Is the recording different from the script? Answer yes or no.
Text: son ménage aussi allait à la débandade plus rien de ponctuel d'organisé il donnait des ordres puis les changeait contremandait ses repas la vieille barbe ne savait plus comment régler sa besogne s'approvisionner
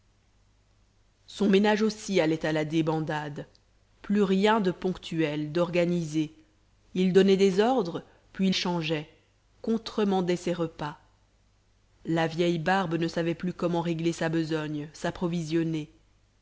yes